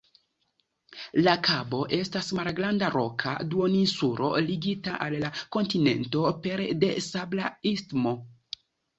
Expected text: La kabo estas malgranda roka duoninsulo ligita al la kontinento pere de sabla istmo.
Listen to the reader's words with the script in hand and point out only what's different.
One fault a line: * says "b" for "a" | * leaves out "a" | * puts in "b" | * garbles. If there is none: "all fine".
all fine